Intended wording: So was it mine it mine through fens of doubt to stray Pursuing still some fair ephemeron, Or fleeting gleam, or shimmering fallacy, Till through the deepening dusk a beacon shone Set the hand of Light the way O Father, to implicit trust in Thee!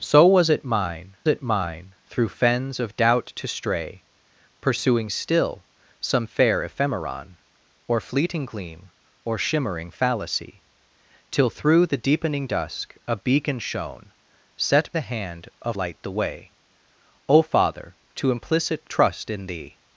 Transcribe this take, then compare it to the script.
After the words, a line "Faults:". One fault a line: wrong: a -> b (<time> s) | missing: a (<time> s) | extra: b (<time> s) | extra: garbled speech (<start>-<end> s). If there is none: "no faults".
So was it mine it mine through fens of doubt to stray Pursuing still some fair ephemeron, Or fleeting gleam, or shimmering fallacy, Till through the deepening dusk a beacon shone Set the hand of Light the way O Father, to implicit trust in Thee!
Faults:
no faults